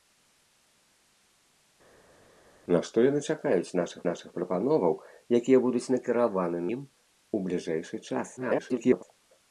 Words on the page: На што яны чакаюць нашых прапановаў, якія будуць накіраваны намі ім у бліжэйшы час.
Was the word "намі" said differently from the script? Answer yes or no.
yes